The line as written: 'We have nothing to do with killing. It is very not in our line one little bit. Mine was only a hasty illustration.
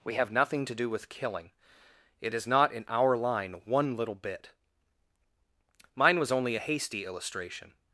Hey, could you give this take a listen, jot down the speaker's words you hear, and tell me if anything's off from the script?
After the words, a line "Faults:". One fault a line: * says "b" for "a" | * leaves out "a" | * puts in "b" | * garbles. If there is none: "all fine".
'We have nothing to do with killing. It is not in our line one little bit. Mine was only a hasty illustration.
Faults:
* leaves out "very"